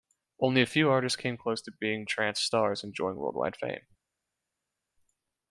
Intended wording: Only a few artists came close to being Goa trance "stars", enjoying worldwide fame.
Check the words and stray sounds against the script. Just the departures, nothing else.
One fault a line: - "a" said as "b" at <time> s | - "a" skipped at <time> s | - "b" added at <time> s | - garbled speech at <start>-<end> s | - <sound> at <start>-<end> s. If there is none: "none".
- "Goa" skipped at 2.1 s